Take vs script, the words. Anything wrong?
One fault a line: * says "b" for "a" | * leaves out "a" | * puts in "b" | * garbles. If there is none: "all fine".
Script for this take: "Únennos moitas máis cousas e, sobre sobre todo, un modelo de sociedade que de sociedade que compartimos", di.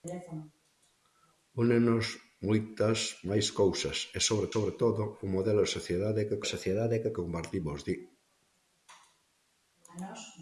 all fine